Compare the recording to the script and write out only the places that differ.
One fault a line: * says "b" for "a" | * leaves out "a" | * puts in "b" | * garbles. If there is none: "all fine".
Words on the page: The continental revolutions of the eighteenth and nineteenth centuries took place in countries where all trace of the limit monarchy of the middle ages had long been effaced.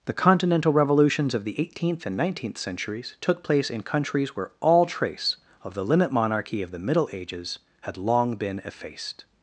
all fine